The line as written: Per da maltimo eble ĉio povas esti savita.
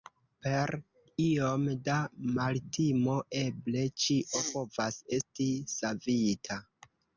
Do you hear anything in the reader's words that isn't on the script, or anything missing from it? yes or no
yes